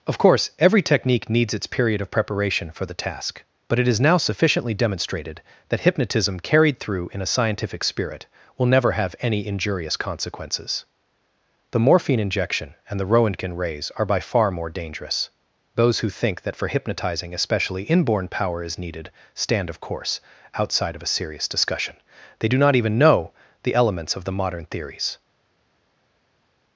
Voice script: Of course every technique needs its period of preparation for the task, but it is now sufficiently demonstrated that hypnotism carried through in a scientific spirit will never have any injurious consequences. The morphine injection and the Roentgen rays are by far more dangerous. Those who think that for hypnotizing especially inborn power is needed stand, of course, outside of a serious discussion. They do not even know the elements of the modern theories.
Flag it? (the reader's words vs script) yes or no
no